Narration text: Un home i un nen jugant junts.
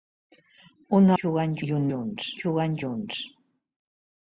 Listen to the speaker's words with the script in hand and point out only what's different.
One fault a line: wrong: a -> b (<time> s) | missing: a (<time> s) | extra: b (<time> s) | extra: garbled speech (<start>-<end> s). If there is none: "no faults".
wrong: home -> jugant (1.2 s)
wrong: nen -> junts (1.9 s)